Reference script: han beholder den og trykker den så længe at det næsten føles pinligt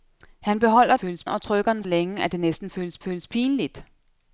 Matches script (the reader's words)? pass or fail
fail